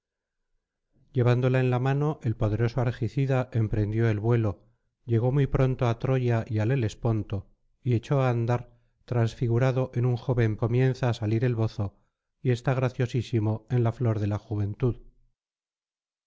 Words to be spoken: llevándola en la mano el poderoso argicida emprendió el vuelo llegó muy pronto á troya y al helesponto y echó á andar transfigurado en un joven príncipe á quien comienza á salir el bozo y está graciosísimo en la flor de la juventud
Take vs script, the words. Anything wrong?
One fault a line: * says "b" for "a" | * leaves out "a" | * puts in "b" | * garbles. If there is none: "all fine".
* leaves out "príncipe á quien"